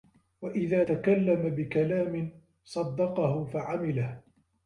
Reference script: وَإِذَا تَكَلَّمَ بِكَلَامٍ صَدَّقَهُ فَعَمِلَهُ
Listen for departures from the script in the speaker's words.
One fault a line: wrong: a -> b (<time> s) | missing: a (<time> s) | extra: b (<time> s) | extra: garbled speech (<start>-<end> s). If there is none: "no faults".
no faults